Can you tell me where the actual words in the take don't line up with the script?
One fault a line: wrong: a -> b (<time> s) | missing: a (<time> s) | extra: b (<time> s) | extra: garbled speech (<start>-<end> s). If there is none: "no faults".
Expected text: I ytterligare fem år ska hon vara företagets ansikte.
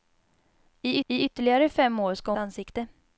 extra: I (1.1 s)
missing: hon vara företagets (2.3 s)